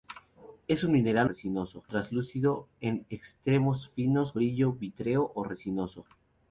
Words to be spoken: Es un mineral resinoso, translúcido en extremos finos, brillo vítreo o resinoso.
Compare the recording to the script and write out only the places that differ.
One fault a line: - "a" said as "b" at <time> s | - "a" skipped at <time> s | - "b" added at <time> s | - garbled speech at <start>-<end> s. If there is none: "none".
none